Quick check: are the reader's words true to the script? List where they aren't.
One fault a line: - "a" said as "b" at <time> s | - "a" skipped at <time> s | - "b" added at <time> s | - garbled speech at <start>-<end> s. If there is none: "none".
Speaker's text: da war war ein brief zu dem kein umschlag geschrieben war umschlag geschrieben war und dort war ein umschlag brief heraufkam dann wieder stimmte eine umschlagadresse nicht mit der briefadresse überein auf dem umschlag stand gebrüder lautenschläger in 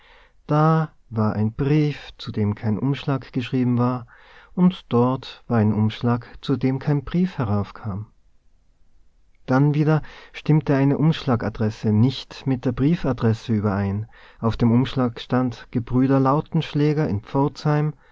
- "war" skipped at 1.3 s
- "umschlag geschrieben war" skipped at 4.1 s
- "zu dem kein" added at 6.4 s